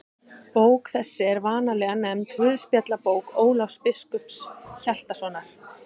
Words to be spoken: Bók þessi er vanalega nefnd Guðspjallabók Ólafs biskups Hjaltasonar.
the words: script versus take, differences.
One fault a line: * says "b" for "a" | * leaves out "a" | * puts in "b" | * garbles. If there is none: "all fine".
all fine